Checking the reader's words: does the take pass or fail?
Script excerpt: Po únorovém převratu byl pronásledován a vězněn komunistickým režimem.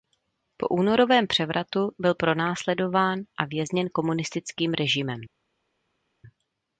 pass